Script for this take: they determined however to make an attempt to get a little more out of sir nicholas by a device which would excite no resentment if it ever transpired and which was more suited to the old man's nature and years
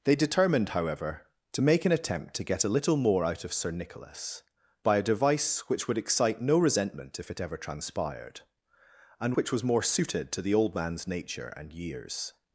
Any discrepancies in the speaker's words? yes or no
no